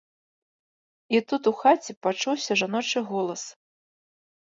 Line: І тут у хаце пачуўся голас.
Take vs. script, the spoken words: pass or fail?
fail